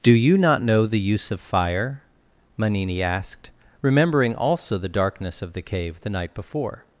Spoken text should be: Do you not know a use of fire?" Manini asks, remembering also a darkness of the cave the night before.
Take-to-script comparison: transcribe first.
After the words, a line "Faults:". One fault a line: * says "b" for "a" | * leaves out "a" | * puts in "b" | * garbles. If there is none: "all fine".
Do you not know the use of fire?" Manini asked, remembering also the darkness of the cave the night before.
Faults:
* says "the" for "a"
* says "asked" for "asks"
* says "the" for "a"